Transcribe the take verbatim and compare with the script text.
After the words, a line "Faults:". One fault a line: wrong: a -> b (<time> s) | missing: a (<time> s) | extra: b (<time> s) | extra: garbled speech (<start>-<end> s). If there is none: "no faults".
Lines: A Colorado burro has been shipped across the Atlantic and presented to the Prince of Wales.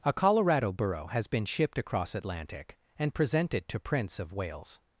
A Colorado burro has been shipped across Atlantic and presented to Prince of Wales.
Faults:
missing: the (2.1 s)
missing: the (3.8 s)